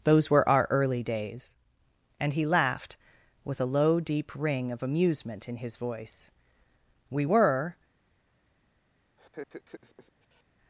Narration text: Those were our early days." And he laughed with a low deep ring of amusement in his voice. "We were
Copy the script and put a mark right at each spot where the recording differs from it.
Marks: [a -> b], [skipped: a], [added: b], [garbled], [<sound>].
Those were our early days." And he laughed with a low deep ring of amusement in his voice. "We were [laugh]